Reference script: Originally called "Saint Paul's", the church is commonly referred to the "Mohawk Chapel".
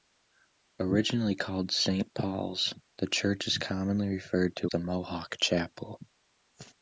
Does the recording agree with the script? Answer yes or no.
yes